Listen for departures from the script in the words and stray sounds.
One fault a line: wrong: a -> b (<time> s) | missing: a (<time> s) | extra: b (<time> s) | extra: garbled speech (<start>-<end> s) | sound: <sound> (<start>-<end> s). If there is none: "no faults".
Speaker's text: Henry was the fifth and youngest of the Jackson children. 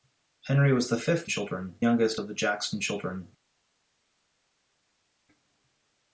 wrong: and -> children (1.3 s)